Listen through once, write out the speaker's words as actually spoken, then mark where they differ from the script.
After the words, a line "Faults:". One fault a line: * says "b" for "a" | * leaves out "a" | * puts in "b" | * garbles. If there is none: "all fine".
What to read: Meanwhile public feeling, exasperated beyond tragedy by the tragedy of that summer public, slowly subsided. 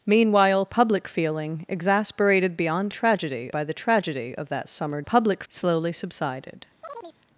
Meanwhile public feeling, exasperated beyond tragedy by the tragedy of that summer public, slowly subsided.
Faults:
all fine